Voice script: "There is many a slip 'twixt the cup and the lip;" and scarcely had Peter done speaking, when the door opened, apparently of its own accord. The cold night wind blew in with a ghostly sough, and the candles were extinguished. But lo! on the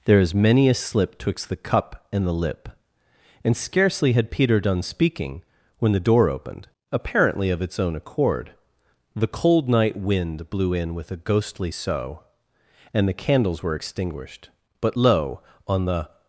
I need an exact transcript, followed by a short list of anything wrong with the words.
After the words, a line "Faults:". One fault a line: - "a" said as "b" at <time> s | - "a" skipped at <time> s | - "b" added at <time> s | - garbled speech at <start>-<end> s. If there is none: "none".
"There is many a slip 'twixt the cup and the lip;" and scarcely had Peter done speaking, when the door opened, apparently of its own accord. The cold night wind blew in with a ghostly sough, and the candles were extinguished. But lo! on the
Faults:
none